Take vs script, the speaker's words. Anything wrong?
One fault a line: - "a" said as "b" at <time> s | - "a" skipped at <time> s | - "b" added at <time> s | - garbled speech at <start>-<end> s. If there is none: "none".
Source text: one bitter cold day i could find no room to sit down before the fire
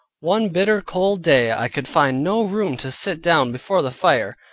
none